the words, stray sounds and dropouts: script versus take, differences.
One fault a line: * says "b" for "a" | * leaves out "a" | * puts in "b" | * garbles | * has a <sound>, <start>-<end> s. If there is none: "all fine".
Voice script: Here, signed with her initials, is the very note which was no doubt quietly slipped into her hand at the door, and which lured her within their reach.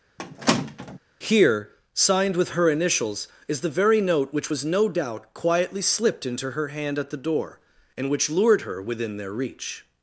* has a squeak, 0.2-1.0 s